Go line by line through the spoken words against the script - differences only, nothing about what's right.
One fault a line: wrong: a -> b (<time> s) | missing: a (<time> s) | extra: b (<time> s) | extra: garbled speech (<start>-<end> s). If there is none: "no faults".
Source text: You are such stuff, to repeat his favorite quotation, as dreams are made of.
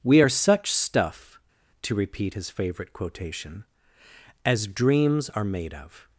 wrong: You -> We (0.0 s)